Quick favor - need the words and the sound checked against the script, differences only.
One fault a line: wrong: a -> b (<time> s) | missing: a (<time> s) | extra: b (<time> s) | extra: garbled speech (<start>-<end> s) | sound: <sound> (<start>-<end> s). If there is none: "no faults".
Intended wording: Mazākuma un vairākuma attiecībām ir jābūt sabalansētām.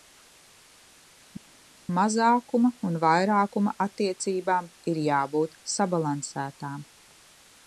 no faults